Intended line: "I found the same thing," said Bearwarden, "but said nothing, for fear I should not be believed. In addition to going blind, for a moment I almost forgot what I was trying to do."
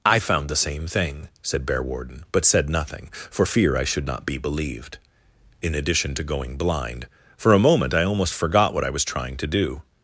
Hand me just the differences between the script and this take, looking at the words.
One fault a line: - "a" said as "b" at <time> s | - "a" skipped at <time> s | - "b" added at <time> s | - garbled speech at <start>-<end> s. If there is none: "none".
none